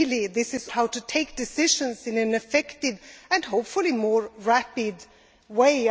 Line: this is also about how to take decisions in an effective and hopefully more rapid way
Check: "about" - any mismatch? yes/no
yes